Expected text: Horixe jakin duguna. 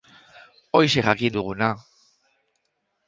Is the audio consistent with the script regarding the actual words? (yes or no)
yes